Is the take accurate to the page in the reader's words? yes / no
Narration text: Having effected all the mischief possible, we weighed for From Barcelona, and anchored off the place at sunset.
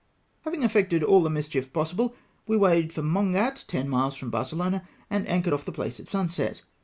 no